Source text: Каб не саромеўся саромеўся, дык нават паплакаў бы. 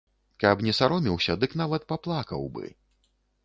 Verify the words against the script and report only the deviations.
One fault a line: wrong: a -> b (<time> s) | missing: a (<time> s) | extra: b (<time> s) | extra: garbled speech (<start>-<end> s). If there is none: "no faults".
missing: саромеўся (1.4 s)